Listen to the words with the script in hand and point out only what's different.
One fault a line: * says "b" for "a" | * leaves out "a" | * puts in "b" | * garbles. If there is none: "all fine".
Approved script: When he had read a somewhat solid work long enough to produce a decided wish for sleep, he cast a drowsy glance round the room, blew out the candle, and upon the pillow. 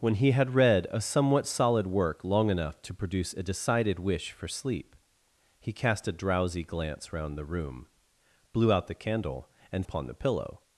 all fine